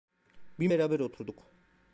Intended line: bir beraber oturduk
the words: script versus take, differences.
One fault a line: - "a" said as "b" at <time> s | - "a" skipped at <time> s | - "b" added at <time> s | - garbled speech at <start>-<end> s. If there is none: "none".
none